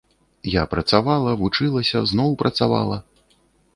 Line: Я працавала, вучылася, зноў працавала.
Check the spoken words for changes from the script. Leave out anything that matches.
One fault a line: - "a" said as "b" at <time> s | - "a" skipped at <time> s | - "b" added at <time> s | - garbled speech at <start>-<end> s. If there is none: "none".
none